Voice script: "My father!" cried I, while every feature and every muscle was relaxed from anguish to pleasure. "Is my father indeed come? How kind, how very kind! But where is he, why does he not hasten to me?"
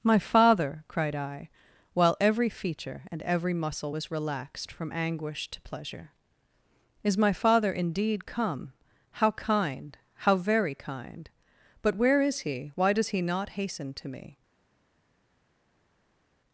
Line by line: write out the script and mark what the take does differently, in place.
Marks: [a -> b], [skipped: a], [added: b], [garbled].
"My father!" cried I, while every feature and every muscle was relaxed from anguish to pleasure. "Is my father indeed come? How kind, how very kind! But where is he, why does he not hasten to me?"